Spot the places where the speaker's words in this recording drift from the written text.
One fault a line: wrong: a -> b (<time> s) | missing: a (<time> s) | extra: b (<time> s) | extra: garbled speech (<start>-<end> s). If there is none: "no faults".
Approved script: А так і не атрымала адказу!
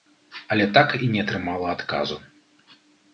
wrong: А -> Але (0.5 s)